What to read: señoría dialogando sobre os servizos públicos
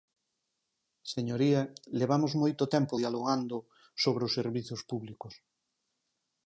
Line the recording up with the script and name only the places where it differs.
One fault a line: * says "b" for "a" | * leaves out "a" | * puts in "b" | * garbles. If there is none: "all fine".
* puts in "levamos moito tempo"